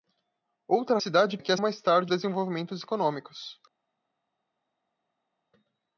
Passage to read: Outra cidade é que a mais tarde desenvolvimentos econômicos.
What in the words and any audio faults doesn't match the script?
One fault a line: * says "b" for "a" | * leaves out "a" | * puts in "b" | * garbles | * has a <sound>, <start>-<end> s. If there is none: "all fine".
all fine